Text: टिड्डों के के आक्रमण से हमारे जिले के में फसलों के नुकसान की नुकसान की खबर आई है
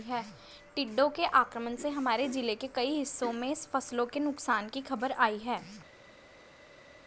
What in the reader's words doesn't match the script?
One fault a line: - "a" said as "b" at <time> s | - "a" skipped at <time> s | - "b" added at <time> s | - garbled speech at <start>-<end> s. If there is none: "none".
- "के" skipped at 1.2 s
- "कई हिस्सों" added at 2.7 s
- "नुकसान की" skipped at 4.8 s